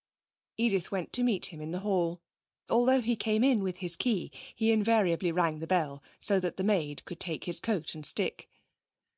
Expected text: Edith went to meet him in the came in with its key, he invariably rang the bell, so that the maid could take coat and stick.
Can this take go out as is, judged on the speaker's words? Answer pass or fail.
fail